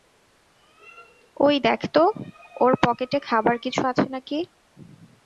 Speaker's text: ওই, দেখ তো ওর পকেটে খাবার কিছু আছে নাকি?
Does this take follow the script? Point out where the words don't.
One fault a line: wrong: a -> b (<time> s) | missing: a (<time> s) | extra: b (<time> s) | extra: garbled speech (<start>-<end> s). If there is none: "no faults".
no faults